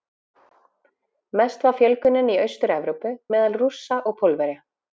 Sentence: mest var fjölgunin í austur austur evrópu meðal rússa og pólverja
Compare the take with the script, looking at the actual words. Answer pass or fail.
fail